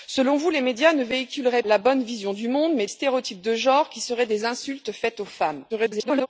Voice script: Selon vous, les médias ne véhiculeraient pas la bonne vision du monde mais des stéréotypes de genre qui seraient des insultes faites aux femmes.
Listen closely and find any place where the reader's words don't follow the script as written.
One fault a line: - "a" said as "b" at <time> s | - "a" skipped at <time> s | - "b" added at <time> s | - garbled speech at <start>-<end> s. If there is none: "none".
- "pas" skipped at 1.6 s
- "des" skipped at 2.9 s
- garbled speech at 5.7-6.3 s